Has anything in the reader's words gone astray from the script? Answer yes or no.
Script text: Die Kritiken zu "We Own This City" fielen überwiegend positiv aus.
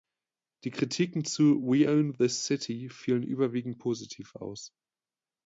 no